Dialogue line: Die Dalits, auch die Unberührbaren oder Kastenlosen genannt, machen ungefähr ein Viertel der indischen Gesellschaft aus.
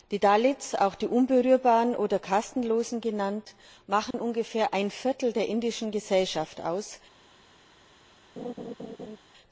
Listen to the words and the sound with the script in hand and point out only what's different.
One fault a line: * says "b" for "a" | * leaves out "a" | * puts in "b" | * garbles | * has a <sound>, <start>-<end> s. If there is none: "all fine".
* has a dropout, 4.1-4.1 s
* has a laugh, 8.4-9.2 s